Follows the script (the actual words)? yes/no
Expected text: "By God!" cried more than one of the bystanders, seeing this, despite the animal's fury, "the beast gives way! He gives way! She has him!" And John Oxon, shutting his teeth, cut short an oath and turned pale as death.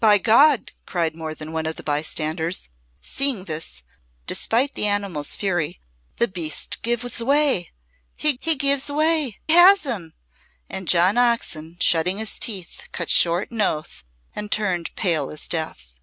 no